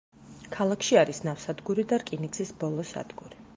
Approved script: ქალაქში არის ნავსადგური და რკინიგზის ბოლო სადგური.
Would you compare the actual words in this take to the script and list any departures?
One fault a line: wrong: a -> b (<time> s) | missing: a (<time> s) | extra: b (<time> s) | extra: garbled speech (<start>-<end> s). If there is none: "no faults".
no faults